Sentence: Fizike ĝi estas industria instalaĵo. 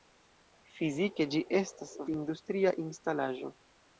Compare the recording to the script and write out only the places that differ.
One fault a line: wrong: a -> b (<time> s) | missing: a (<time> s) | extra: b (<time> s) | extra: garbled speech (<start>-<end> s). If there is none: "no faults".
no faults